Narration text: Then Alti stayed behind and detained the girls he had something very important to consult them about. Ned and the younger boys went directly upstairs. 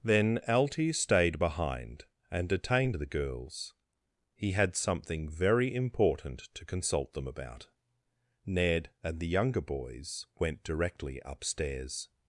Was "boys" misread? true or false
false